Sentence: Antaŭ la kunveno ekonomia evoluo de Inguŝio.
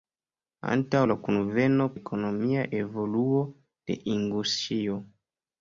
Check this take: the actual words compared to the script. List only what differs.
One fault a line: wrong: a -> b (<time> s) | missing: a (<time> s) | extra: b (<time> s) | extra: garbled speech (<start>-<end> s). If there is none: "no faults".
no faults